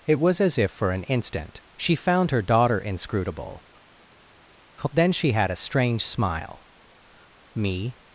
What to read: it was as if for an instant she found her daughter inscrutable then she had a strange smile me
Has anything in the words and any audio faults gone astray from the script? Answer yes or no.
no